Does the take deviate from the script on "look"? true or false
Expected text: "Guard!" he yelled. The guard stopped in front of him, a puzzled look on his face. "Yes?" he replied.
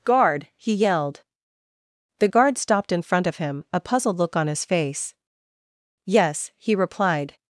false